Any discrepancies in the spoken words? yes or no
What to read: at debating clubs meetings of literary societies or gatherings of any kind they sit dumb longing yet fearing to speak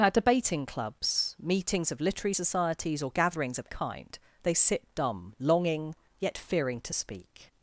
yes